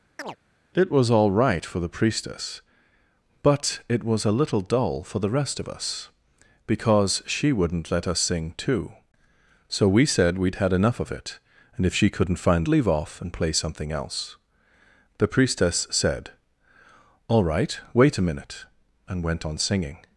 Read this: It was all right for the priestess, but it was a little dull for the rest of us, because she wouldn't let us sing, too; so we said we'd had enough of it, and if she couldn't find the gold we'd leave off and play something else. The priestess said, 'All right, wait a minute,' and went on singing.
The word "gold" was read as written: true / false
false